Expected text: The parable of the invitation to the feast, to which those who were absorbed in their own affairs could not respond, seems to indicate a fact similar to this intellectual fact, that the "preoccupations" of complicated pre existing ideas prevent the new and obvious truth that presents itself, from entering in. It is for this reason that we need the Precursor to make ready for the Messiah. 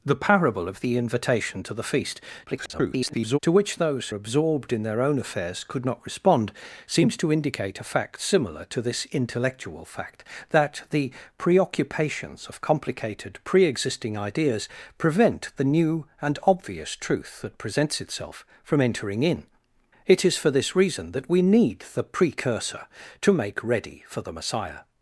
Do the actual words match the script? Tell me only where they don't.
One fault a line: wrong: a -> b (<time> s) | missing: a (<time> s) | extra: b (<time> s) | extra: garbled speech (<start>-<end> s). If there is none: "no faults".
extra: garbled speech (2.5-3.4 s)
missing: who were (4.1 s)